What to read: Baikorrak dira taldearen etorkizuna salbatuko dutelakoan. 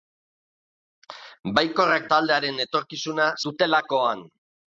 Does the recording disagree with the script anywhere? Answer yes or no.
yes